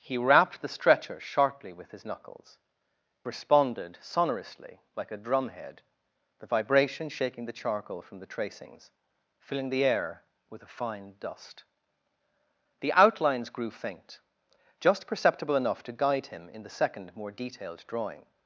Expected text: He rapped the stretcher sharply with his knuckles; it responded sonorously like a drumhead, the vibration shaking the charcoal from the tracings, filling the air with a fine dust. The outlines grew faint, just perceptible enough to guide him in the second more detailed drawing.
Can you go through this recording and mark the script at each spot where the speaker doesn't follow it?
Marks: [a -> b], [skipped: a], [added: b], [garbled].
He rapped the stretcher sharply with his knuckles; [skipped: it] responded sonorously like a drumhead, the vibration shaking the charcoal from the tracings, filling the air with a fine dust. The outlines grew faint, just perceptible enough to guide him in the second more detailed drawing.